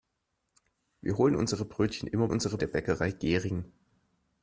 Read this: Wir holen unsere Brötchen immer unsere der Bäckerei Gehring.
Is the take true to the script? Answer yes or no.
yes